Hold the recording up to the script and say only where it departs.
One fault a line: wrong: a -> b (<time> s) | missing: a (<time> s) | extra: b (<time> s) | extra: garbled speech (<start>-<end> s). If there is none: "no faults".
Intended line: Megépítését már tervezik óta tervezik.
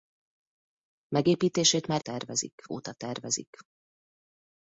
no faults